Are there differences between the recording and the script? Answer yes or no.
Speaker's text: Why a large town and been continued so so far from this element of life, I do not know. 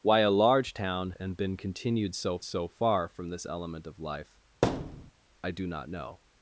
no